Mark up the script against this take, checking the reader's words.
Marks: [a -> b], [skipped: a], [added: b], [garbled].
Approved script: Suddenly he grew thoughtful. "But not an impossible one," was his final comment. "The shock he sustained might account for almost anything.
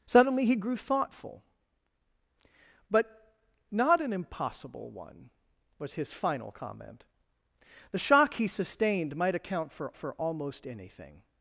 Suddenly he grew thoughtful. "But not an impossible one," was his final comment. "The shock he sustained might account for [added: for] almost anything.